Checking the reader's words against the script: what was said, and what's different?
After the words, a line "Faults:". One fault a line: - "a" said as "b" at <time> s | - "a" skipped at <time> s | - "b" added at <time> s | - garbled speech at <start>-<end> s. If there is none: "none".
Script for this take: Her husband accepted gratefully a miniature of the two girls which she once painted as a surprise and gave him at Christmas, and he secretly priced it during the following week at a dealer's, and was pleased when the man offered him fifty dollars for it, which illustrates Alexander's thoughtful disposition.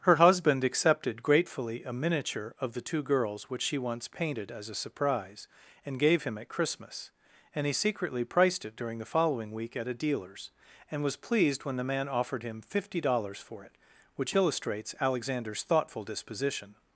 Her husband accepted gratefully a miniature of the two girls which she once painted as a surprise and gave him at Christmas, and he secretly priced it during the following week at a dealer's, and was pleased when the man offered him fifty dollars for it, which illustrates Alexander's thoughtful disposition.
Faults:
none